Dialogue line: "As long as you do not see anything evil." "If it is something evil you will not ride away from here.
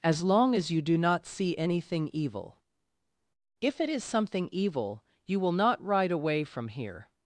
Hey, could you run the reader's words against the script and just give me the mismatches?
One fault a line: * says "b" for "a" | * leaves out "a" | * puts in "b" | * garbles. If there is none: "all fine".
all fine